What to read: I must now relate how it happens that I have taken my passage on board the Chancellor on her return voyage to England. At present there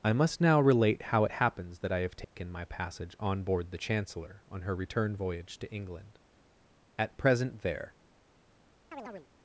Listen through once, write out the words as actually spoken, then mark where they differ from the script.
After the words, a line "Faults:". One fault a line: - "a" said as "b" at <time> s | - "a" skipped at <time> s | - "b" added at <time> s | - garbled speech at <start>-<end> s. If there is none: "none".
I must now relate how it happens that I have taken my passage on board the Chancellor on her return voyage to England. At present there
Faults:
none